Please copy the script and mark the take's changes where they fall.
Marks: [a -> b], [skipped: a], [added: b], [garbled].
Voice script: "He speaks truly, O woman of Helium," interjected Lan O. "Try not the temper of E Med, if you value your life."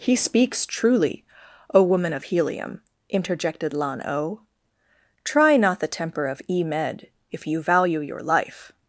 "He speaks truly, O woman of Helium," interjected Lan O. "Try not the temper of E Med, if you value your life."